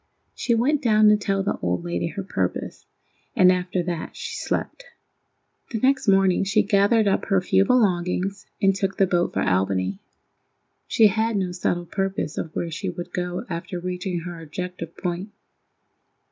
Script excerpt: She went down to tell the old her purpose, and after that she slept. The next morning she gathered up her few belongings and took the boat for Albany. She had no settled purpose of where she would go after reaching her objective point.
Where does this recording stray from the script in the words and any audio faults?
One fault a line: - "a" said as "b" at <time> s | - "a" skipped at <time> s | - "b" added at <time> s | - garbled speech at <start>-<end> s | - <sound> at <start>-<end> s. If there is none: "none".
- "lady" added at 1.8 s